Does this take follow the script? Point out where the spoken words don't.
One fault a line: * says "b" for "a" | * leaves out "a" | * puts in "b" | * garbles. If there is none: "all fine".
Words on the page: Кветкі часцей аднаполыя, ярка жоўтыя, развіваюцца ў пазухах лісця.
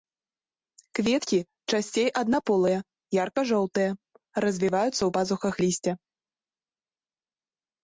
all fine